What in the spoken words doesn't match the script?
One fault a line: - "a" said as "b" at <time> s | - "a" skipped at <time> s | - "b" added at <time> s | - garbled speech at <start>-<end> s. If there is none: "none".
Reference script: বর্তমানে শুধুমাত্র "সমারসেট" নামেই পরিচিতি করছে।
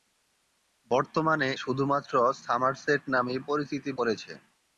none